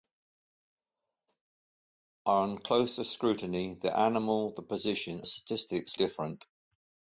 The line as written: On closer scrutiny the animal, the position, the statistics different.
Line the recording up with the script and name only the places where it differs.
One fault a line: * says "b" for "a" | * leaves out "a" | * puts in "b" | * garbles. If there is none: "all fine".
all fine